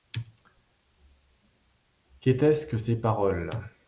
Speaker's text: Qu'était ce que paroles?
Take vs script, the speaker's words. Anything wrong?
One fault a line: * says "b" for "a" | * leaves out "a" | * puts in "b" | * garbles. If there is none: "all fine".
* puts in "ces"